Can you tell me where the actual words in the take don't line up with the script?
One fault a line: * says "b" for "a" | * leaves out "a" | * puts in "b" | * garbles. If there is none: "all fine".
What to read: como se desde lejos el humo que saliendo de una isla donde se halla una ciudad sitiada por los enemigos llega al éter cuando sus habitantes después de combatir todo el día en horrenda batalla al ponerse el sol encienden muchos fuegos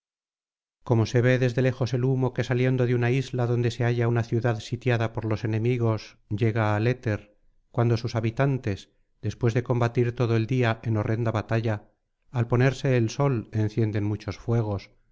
* puts in "ve"